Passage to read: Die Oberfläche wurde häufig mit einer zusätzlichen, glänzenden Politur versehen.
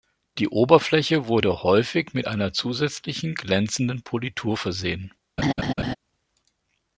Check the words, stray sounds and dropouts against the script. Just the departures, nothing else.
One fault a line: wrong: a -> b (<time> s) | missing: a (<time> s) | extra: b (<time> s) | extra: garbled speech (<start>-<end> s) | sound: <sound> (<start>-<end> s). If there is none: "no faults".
sound: laugh (5.4-5.9 s)